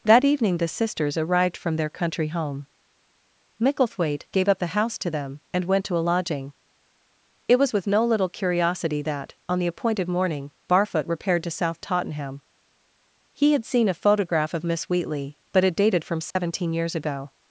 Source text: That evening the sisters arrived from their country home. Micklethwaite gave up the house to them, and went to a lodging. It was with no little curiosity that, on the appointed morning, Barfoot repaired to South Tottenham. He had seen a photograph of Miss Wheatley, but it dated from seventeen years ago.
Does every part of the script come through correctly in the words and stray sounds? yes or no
no